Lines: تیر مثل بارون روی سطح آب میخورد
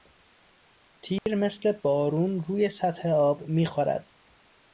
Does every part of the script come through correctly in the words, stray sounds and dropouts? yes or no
no